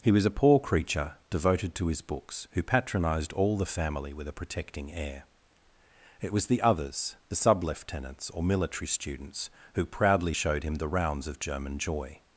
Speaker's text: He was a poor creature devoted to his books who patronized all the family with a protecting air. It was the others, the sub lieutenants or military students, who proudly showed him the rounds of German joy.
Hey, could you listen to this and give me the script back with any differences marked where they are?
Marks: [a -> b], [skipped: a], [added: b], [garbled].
He was a poor creature devoted to his books who patronized all the family with a protecting air. It was the others, the sub lieutenants or military students, who proudly showed him the rounds of German joy.